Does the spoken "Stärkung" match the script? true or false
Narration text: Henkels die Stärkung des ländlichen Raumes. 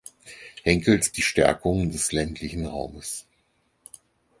true